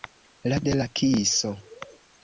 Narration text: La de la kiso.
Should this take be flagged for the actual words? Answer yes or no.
no